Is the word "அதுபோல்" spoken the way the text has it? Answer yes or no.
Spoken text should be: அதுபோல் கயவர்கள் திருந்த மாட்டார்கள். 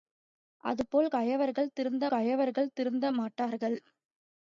yes